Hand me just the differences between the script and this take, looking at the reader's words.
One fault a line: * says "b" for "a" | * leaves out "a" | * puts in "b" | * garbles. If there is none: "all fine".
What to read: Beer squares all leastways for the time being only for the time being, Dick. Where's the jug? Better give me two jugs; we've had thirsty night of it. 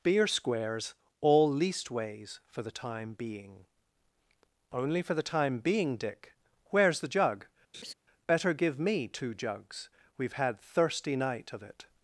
all fine